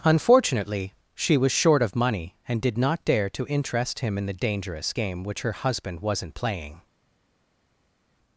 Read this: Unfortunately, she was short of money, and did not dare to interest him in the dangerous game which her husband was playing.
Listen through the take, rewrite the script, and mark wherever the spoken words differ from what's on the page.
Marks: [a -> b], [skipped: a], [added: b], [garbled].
Unfortunately, she was short of money, and did not dare to interest him in the dangerous game which her husband [was -> wasn't] playing.